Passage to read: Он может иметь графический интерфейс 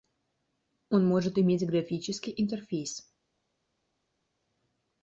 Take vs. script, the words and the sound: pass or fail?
pass